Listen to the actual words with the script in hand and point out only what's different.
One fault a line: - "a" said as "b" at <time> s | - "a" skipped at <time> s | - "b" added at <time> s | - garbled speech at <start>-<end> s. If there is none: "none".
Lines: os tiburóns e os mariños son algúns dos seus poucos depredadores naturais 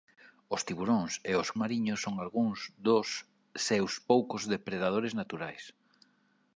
none